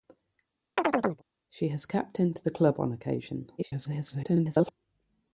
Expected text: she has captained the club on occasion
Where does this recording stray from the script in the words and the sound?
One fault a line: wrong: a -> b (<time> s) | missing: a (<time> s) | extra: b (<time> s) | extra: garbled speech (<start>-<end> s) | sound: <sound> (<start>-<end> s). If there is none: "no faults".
sound: chirp (0.8-1.2 s)
extra: garbled speech (3.6-4.7 s)